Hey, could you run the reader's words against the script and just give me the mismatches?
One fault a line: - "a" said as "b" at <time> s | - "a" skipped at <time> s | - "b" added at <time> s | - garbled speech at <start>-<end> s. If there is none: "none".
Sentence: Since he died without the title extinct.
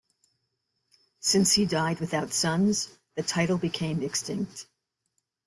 - "sons" added at 2.3 s
- "became" added at 3.6 s